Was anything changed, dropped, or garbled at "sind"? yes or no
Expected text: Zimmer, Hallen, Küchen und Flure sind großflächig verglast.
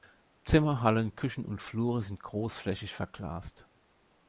no